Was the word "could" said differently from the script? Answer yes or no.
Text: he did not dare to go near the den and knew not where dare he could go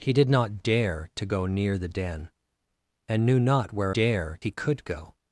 no